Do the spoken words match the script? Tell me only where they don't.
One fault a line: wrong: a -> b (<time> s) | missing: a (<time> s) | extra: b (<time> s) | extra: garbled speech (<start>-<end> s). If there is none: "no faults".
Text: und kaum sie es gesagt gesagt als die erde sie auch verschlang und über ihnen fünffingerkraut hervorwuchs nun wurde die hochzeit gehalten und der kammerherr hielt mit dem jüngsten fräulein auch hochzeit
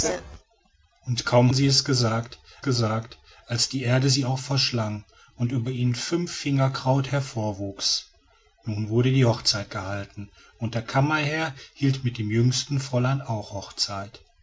no faults